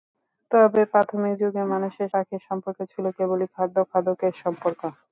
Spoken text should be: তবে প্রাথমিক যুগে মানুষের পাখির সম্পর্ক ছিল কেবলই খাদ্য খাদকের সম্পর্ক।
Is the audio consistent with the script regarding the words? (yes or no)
yes